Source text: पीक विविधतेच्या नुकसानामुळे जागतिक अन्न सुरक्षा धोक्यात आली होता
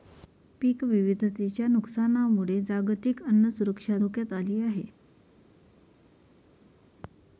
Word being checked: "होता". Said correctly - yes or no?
no